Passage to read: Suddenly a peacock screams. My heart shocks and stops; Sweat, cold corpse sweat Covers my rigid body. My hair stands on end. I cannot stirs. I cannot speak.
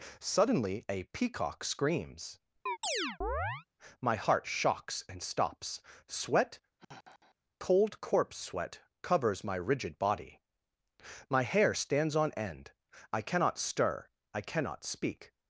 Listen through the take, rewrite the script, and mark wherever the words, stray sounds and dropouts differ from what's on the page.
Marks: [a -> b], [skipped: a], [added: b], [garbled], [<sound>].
Suddenly a peacock screams. [chirp] My heart shocks and stops; Sweat, [sigh] cold corpse sweat Covers my rigid body. My hair stands on end. I cannot [stirs. -> stir] I cannot speak.